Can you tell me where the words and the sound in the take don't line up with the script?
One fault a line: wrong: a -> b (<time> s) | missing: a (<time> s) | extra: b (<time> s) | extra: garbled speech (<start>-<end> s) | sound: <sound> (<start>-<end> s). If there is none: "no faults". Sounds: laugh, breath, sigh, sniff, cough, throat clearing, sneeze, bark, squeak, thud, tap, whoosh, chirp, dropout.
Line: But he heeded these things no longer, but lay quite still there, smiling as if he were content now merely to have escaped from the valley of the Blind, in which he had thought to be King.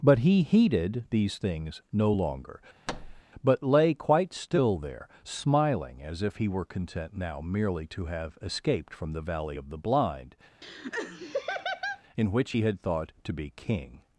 sound: thud (2.9-3.2 s)
sound: laugh (10.6-12.0 s)